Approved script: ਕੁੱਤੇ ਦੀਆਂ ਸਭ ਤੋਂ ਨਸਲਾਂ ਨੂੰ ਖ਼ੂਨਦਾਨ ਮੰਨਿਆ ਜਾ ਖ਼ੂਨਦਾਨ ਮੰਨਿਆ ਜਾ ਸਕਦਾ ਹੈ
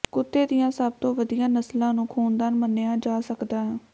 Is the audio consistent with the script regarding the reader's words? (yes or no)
no